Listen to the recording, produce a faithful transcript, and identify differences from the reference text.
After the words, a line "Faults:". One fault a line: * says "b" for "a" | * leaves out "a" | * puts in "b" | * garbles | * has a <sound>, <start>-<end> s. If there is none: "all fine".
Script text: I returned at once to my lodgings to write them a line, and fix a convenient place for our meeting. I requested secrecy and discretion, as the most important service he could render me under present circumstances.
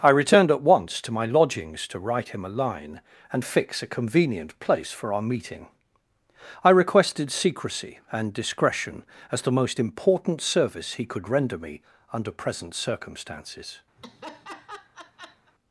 I returned at once to my lodgings to write him a line, and fix a convenient place for our meeting. I requested secrecy and discretion, as the most important service he could render me under present circumstances.
Faults:
* says "him" for "them"
* has a laugh, 14.0-15.5 s